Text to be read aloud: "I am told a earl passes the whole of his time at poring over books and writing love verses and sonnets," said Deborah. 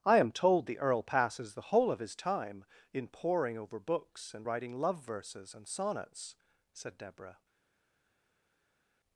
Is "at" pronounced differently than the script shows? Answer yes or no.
yes